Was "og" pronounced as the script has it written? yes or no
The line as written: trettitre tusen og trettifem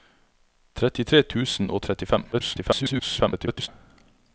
yes